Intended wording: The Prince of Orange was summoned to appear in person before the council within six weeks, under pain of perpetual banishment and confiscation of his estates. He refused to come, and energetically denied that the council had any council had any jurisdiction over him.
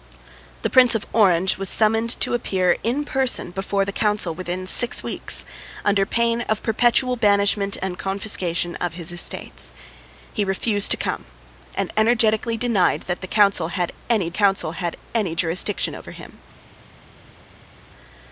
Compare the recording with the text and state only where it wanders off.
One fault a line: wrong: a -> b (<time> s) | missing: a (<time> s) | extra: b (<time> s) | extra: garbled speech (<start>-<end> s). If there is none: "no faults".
no faults